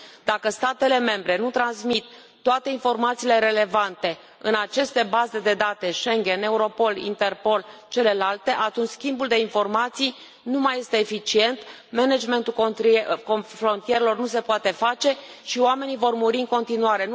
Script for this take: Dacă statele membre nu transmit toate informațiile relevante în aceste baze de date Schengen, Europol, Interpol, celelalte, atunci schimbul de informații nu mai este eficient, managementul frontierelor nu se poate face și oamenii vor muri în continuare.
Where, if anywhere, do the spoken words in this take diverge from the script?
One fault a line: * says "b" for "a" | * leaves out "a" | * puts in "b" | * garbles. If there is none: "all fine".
all fine